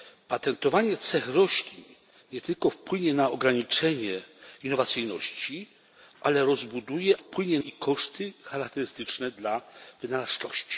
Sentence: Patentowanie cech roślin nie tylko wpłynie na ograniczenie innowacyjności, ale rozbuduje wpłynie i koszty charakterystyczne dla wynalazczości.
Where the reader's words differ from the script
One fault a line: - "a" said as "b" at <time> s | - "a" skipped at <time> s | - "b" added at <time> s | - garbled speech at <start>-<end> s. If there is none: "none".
none